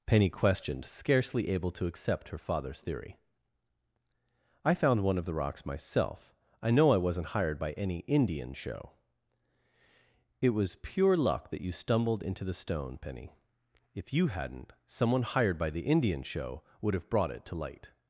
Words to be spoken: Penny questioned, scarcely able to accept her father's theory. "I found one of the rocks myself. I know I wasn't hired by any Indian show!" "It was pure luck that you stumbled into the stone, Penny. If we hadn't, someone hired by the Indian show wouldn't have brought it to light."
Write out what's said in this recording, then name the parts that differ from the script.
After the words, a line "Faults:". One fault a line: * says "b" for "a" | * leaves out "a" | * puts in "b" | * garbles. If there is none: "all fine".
Penny questioned, scarcely able to accept her father's theory. "I found one of the rocks myself. I know I wasn't hired by any Indian show!" "It was pure luck that you stumbled into the stone, Penny. If you hadn't, someone hired by the Indian show would have brought it to light."
Faults:
* says "you" for "we"
* says "would" for "wouldn't"